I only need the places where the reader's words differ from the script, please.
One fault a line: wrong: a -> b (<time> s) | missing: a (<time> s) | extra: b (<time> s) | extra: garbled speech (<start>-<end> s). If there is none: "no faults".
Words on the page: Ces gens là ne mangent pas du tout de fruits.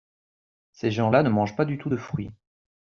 no faults